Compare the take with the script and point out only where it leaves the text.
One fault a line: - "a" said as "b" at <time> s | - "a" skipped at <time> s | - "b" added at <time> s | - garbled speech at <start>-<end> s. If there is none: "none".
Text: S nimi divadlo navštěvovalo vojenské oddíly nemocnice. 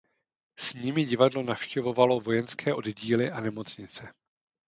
- "a" added at 3.3 s